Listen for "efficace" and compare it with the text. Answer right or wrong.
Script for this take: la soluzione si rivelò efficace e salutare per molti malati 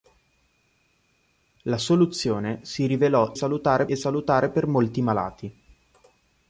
wrong